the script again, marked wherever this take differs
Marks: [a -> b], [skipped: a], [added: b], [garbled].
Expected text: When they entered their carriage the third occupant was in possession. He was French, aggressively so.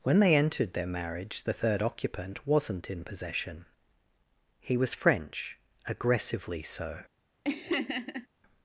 When they entered their [carriage -> marriage] the third occupant [was -> wasn't] in possession. He was French, aggressively so.